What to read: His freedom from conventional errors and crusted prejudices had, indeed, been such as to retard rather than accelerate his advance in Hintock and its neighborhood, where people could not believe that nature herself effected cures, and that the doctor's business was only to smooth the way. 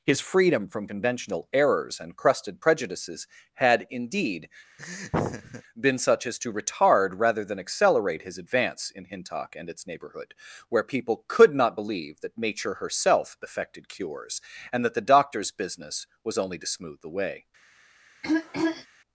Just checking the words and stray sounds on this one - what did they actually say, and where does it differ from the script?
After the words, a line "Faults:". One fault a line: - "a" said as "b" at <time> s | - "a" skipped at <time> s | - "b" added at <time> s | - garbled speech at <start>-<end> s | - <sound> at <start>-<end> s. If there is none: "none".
His freedom from conventional errors and crusted prejudices had, indeed, been such as to retard rather than accelerate his advance in Hintock and its neighborhood, where people could not believe that nature herself effected cures, and that the doctor's business was only to smooth the way.
Faults:
- laugh at 4.8-5.6 s
- throat clearing at 18.2-18.9 s